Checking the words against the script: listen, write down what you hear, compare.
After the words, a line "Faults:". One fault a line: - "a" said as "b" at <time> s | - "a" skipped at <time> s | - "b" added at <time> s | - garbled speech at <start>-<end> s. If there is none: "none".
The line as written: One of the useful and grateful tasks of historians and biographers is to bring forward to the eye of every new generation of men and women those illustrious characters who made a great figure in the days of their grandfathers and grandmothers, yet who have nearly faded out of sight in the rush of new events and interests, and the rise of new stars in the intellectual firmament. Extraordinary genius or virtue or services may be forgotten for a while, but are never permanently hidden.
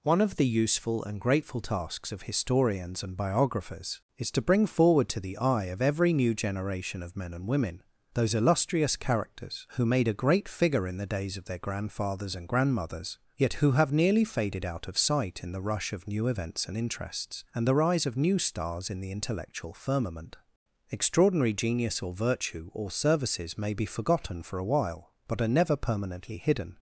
One of the useful and grateful tasks of historians and biographers is to bring forward to the eye of every new generation of men and women those illustrious characters who made a great figure in the days of their grandfathers and grandmothers, yet who have nearly faded out of sight in the rush of new events and interests, and the rise of new stars in the intellectual firmament. Extraordinary genius or virtue or services may be forgotten for a while, but are never permanently hidden.
Faults:
none